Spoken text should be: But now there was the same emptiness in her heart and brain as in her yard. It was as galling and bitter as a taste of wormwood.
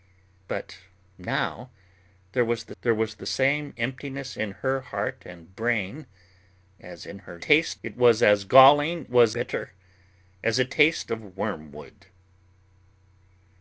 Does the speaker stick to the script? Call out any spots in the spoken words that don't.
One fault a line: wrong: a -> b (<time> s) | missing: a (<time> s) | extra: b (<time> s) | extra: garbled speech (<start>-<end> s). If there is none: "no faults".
extra: there was the (2.8 s)
wrong: yard -> taste (7.4 s)
wrong: and -> was (9.1 s)